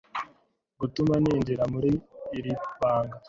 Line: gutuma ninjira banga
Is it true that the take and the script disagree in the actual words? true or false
true